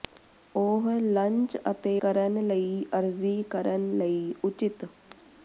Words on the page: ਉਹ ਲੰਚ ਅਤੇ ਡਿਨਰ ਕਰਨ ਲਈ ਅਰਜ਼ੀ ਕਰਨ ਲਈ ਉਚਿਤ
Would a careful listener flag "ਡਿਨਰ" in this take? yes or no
yes